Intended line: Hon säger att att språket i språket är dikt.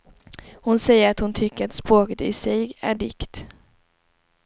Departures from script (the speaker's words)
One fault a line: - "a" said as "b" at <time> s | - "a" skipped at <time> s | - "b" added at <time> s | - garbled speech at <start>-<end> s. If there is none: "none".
- "hon tycker" added at 1.2 s
- "språket" said as "sig" at 2.3 s